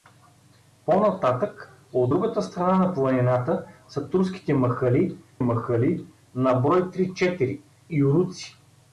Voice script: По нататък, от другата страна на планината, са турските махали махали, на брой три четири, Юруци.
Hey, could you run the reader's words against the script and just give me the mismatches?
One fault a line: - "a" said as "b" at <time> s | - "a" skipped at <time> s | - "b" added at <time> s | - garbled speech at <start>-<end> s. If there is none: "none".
none